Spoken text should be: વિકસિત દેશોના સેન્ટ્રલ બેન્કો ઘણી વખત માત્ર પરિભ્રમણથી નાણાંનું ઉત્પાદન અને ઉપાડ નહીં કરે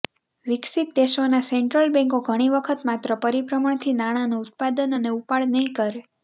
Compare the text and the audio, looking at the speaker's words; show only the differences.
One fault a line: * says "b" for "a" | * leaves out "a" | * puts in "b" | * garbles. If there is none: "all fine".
all fine